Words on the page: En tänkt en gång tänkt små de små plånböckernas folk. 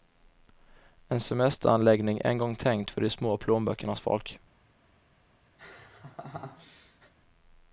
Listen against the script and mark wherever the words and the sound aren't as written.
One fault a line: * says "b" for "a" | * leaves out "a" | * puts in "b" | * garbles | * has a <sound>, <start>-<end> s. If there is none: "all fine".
* says "semesteranläggning" for "tänkt"
* says "för" for "små"
* has a laugh, 5.6-7.1 s